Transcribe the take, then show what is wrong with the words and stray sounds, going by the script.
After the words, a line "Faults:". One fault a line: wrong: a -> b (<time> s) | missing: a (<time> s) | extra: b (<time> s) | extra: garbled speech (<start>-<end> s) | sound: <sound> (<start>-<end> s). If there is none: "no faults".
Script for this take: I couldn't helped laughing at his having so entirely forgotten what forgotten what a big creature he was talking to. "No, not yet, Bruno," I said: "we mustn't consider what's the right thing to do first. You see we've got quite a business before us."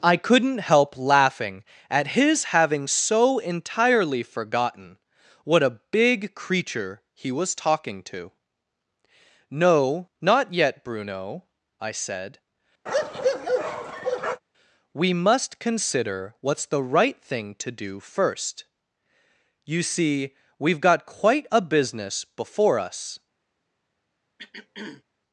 I couldn't help laughing at his having so entirely forgotten what a big creature he was talking to. "No, not yet, Bruno," I said: "we must consider what's the right thing to do first. You see we've got quite a business before us."
Faults:
wrong: helped -> help (0.6 s)
missing: forgotten what (5.6 s)
sound: bark (12.9-14.4 s)
wrong: mustn't -> must (15.1 s)
sound: throat clearing (24.4-25.0 s)